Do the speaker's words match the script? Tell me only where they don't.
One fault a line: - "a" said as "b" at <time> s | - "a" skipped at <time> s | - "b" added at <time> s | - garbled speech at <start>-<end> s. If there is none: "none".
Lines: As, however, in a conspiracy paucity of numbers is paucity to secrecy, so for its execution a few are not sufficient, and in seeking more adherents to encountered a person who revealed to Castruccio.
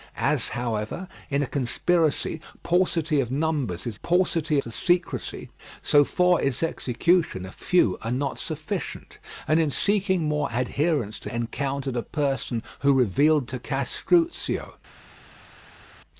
none